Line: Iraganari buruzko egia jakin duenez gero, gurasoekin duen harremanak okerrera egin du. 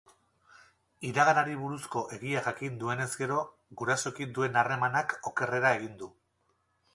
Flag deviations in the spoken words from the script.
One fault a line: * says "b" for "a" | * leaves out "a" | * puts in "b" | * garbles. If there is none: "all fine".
all fine